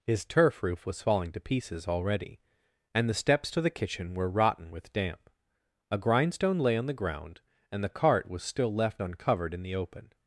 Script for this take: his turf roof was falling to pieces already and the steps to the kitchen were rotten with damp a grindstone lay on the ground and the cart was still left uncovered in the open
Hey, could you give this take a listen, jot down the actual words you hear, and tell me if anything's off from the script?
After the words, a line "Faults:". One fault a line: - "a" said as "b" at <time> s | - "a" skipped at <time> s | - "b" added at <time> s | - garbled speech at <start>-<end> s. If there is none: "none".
his turf roof was falling to pieces already and the steps to the kitchen were rotten with damp a grindstone lay on the ground and the cart was still left uncovered in the open
Faults:
none